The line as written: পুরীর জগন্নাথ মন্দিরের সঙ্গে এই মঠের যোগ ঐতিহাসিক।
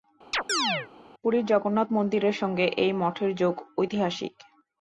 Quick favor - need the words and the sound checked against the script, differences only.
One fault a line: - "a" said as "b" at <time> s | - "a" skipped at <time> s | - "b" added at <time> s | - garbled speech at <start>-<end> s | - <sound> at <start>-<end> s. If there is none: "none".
- chirp at 0.3-0.9 s